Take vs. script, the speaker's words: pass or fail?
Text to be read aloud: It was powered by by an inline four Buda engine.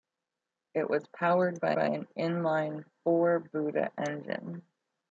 pass